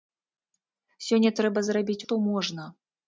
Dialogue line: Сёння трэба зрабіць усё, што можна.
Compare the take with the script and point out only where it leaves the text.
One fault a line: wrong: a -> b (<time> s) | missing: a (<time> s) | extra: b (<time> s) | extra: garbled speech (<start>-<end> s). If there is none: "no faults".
missing: усё (2.0 s)